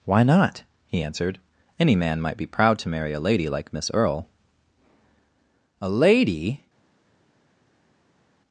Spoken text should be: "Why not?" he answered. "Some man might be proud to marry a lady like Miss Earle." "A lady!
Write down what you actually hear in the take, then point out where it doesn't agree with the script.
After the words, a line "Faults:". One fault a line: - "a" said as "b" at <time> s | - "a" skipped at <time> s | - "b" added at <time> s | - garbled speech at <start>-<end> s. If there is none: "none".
"Why not?" he answered. "Any man might be proud to marry a lady like Miss Earle." "A lady!
Faults:
- "Some" said as "Any" at 1.8 s